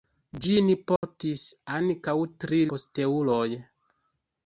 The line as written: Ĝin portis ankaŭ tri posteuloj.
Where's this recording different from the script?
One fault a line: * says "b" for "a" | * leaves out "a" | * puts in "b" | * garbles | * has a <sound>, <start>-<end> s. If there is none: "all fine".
* has a dropout, 1.0-1.0 s